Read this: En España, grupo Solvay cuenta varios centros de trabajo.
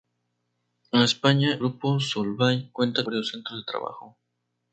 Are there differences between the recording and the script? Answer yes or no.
no